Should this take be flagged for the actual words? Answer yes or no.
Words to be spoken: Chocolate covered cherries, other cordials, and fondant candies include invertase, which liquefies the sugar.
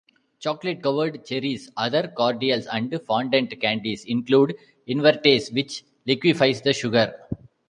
no